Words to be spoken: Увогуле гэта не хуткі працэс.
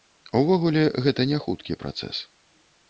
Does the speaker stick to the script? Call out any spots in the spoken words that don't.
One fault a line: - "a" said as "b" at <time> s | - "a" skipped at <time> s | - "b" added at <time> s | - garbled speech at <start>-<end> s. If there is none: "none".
none